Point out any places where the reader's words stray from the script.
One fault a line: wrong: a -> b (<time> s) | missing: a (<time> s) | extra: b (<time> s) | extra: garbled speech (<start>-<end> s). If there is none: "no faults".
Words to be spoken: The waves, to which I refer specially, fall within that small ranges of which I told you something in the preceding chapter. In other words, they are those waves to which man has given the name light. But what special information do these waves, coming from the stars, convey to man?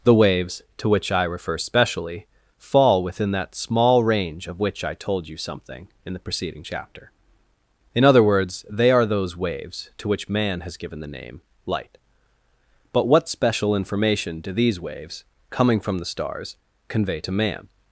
wrong: ranges -> range (4.0 s)